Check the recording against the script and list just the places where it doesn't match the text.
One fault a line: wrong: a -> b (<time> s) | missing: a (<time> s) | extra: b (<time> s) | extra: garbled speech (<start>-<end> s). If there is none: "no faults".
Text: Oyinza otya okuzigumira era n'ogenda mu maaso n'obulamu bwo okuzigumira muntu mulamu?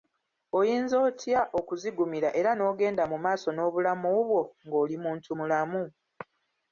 wrong: okuzigumira -> ng'oli (4.7 s)